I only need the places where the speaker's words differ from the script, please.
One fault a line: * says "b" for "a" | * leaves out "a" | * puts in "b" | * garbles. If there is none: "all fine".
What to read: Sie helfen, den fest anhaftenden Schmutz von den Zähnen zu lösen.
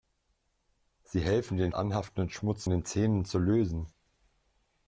* leaves out "fest"
* leaves out "von"